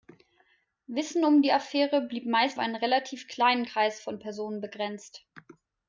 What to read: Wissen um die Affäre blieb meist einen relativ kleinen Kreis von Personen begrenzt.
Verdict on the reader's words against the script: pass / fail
pass